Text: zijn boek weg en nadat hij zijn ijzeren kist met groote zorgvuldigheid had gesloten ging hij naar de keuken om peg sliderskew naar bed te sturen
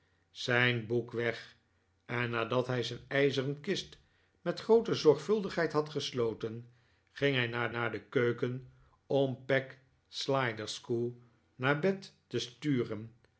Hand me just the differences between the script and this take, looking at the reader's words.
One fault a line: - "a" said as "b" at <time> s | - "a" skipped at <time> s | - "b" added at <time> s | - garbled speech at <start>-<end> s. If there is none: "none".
- "naar" added at 7.7 s